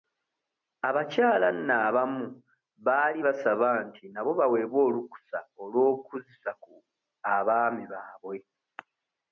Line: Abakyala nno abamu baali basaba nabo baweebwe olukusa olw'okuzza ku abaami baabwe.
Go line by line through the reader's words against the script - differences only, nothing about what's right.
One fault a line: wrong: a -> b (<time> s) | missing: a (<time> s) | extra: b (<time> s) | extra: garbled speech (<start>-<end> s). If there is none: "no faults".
extra: nti (3.9 s)